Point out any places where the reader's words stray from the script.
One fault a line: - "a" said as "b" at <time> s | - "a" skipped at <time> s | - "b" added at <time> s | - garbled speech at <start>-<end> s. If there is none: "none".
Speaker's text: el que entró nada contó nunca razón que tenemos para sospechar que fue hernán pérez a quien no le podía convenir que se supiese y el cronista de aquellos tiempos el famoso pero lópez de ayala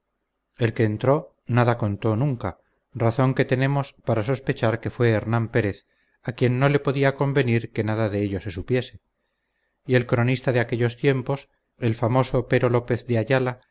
- "nada de ello" added at 7.8 s